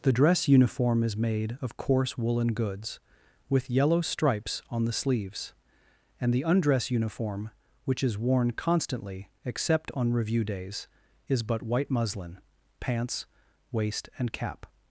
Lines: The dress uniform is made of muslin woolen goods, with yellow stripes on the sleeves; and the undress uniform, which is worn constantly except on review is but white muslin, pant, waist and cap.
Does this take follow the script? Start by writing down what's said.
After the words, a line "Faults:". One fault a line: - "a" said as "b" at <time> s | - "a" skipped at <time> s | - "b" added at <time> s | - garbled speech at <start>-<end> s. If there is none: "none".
The dress uniform is made of coarse woolen goods, with yellow stripes on the sleeves; and the undress uniform, which is worn constantly except on review days, is but white muslin, pants, waist and cap.
Faults:
- "muslin" said as "coarse" at 1.8 s
- "days" added at 10.4 s
- "pant" said as "pants" at 12.8 s